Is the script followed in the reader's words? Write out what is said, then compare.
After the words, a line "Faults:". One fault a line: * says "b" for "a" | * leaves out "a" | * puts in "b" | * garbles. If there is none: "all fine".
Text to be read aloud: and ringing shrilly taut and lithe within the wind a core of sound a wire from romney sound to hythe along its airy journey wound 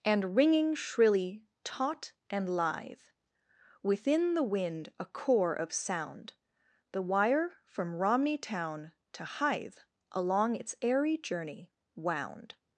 and ringing shrilly taut and lithe within the wind a core of sound the wire from romney town to hythe along its airy journey wound
Faults:
* says "the" for "a"
* says "town" for "sound"